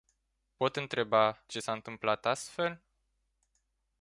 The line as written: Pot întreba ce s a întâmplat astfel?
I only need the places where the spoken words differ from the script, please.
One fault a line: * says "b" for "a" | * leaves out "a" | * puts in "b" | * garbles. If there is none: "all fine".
all fine